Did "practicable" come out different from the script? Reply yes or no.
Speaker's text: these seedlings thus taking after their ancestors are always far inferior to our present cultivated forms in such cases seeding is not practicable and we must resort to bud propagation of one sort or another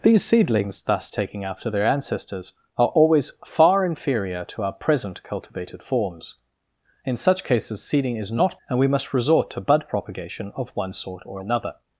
yes